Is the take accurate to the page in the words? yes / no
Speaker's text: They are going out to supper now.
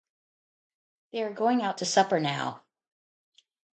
yes